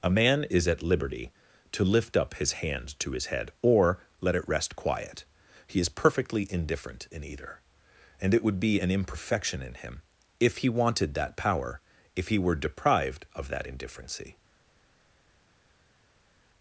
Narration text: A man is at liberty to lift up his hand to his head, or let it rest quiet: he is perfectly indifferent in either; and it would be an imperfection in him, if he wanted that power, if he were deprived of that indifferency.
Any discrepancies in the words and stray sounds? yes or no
no